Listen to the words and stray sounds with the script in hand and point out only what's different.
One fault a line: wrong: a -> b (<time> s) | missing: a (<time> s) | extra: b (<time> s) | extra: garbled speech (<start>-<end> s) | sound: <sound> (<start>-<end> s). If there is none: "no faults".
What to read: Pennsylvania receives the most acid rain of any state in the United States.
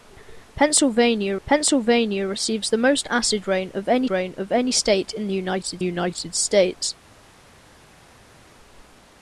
extra: pennsylvania (1.5 s)
extra: rain of any (4.1 s)
extra: United (5.8 s)